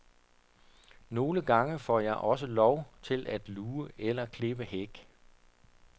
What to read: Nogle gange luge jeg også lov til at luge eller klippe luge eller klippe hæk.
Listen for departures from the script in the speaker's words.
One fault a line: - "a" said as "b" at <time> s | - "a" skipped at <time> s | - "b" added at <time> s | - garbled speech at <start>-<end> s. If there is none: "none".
- "luge" said as "får" at 1.8 s
- "luge eller klippe" skipped at 4.7 s